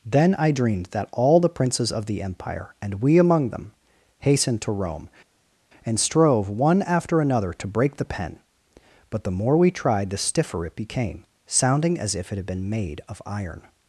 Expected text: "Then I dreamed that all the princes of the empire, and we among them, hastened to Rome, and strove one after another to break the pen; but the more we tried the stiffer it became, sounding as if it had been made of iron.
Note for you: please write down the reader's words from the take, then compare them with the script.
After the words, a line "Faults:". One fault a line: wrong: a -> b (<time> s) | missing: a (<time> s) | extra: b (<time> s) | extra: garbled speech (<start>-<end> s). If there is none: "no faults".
"Then I dreamed that all the princes of the empire, and we among them, hastened to Rome, and strove one after another to break the pen; but the more we tried the stiffer it became, sounding as if it had been made of iron.
Faults:
no faults